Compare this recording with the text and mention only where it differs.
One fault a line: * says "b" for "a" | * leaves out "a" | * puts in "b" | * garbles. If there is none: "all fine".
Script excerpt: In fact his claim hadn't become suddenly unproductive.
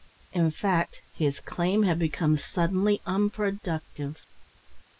* says "had" for "hadn't"